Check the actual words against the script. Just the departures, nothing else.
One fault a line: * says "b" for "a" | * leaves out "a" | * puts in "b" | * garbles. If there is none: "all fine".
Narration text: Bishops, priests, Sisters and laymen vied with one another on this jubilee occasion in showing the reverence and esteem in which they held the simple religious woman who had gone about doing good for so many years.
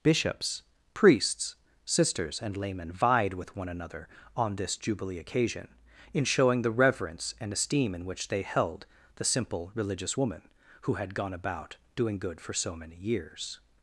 all fine